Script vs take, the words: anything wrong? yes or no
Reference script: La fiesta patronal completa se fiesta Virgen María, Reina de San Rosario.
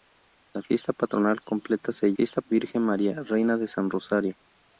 no